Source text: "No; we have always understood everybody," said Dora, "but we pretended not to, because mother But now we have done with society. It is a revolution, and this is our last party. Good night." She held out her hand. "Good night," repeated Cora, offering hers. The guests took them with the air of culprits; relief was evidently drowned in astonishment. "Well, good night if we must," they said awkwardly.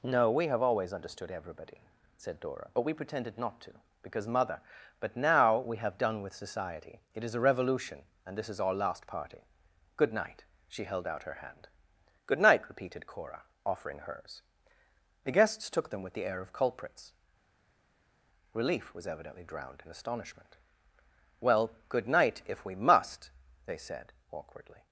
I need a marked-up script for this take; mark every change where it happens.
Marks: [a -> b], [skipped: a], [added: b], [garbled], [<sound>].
"No; we have always understood everybody," said Dora, "but we pretended not to, because mother But now we have done with society. It is a revolution, and this is our last party. Good night." She held out her hand. "Good night," repeated Cora, offering hers. The guests took them with the air of culprits; relief was evidently drowned in astonishment. "Well, good night if we must," they said awkwardly.